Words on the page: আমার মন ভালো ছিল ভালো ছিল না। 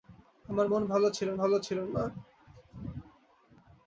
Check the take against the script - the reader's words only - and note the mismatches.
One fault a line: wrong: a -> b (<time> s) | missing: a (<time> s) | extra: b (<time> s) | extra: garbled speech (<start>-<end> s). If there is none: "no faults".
no faults